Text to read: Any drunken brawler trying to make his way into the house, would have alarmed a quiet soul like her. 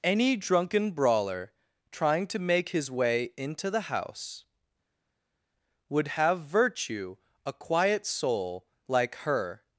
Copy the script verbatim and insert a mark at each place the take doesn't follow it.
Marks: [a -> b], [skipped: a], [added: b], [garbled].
Any drunken brawler trying to make his way into the house, would have [alarmed -> virtue] a quiet soul like her.